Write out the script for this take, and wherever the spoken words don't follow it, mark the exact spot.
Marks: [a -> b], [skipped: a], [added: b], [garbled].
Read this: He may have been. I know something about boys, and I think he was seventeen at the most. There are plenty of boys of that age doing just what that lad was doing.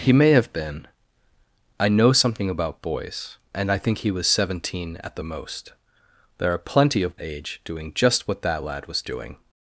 He may have been. I know something about boys, and I think he was seventeen at the most. There are plenty of [skipped: boys of that] age doing just what that lad was doing.